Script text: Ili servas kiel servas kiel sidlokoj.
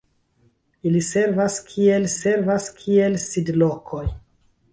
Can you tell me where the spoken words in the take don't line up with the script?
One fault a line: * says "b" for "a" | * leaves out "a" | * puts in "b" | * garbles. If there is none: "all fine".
all fine